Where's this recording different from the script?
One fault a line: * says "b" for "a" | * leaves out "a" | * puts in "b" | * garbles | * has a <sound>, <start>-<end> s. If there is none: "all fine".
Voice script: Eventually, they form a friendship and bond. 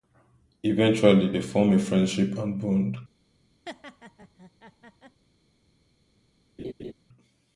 * has a laugh, 3.7-5.2 s
* has a laugh, 6.6-6.9 s